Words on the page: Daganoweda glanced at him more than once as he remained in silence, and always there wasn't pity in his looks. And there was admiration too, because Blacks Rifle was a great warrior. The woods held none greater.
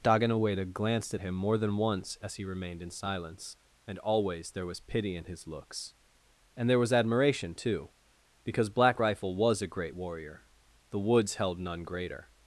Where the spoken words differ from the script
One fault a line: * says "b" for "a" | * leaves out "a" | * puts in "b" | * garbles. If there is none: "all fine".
* says "was" for "wasn't"
* says "Black" for "Blacks"